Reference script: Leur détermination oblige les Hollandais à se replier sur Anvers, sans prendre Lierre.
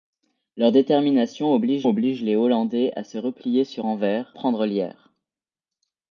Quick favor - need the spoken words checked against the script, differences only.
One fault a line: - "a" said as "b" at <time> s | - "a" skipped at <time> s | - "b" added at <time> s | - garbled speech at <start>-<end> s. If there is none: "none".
- "oblige" added at 1.9 s
- "sans" skipped at 4.3 s